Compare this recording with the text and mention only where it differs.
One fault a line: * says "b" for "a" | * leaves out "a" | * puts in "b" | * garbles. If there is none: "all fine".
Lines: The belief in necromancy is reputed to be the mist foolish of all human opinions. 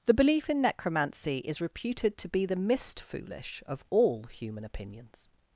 all fine